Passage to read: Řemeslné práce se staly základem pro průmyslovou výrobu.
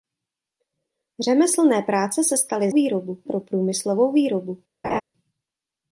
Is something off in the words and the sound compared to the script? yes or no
yes